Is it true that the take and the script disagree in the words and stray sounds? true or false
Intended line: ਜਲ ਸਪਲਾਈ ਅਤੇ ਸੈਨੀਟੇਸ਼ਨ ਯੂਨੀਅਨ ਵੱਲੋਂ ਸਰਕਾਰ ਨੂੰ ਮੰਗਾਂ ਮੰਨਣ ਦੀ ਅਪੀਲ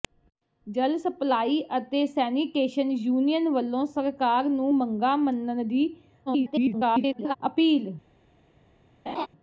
true